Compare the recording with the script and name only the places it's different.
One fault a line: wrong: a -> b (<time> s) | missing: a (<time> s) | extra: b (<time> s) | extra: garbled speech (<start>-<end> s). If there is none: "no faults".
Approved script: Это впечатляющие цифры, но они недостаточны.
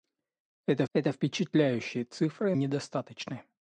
extra: это (0.9 s)
missing: но они (2.5 s)